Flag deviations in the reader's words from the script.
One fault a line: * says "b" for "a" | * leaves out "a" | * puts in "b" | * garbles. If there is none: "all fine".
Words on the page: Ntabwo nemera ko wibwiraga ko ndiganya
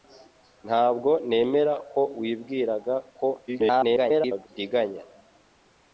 * garbles